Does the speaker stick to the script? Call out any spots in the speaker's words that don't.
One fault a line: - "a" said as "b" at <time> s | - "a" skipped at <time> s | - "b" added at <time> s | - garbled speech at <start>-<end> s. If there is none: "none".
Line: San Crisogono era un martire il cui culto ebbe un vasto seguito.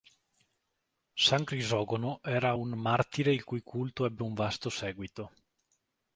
none